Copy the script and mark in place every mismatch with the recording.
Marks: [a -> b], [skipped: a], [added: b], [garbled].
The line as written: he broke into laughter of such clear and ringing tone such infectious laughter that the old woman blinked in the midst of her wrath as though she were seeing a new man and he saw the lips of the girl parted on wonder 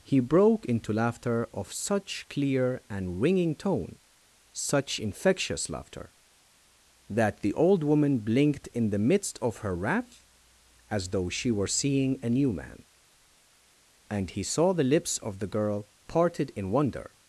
he broke into laughter of such clear and ringing tone such infectious laughter that the old woman blinked in the midst of her wrath as though she were seeing a new man and he saw the lips of the girl parted [on -> in] wonder